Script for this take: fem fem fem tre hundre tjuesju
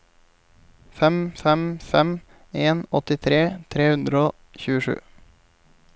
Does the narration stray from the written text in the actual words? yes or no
yes